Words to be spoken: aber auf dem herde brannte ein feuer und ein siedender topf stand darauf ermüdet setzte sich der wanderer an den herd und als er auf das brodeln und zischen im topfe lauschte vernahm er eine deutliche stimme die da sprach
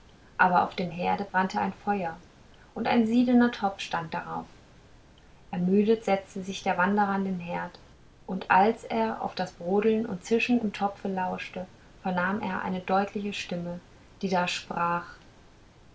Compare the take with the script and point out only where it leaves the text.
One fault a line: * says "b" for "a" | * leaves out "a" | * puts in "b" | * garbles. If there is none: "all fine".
all fine